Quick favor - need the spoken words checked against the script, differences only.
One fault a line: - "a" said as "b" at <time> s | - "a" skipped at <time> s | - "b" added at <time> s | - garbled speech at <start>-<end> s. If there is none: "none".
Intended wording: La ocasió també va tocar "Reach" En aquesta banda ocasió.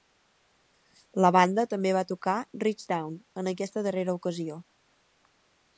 - "ocasió" said as "banda" at 1.4 s
- "Down" added at 2.9 s
- "banda" said as "darrera" at 3.9 s